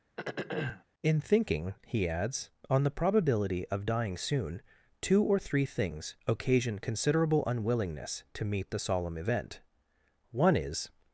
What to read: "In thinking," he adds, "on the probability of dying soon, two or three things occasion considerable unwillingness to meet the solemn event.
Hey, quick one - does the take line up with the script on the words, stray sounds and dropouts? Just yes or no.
no